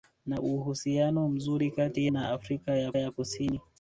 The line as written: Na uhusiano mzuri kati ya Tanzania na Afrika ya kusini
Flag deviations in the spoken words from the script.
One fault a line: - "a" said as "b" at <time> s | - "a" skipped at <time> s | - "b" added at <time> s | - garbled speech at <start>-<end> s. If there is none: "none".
- "ya Tanzania" skipped at 2.1 s
- "ya" added at 3.0 s